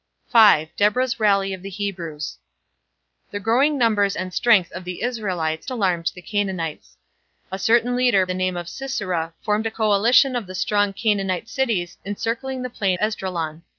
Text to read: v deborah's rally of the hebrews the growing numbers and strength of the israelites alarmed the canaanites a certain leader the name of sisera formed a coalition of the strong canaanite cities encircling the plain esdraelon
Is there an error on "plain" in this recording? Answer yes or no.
no